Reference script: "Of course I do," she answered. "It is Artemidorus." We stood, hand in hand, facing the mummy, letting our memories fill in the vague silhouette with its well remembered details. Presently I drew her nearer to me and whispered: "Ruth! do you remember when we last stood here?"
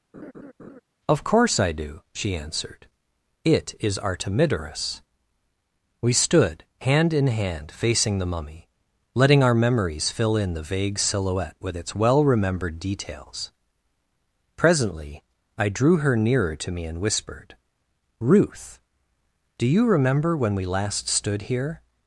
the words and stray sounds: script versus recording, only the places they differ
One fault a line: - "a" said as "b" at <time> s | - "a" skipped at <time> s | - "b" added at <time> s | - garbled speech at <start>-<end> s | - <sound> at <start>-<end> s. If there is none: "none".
- laugh at 0.1-0.8 s